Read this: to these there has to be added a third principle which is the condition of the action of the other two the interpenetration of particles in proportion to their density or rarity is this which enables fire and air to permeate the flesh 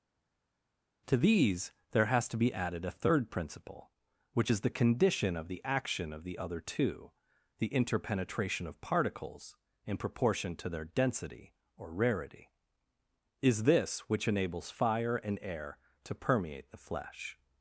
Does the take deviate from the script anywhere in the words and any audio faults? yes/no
no